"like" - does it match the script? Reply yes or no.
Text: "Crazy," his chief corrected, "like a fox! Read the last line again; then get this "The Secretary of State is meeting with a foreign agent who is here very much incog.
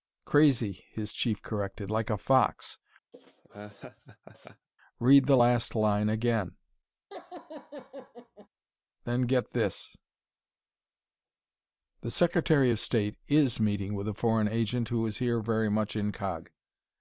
yes